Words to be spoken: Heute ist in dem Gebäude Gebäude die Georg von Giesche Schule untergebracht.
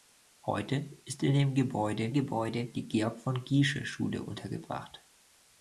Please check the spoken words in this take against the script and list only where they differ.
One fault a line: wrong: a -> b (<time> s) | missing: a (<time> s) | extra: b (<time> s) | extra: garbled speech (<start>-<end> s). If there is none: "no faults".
no faults